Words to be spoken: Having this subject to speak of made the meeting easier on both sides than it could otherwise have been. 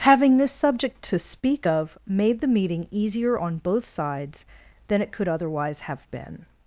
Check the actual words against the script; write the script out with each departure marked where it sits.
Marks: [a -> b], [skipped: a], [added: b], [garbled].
Having this subject to speak of made the meeting easier on both sides than it could otherwise have been.